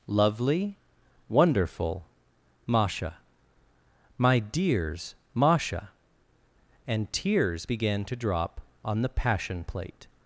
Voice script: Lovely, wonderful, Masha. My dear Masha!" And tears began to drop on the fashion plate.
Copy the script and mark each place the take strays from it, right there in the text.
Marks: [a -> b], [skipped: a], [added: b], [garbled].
Lovely, wonderful, Masha. My [dear -> dears] Masha!" And tears began to drop on the [fashion -> passion] plate.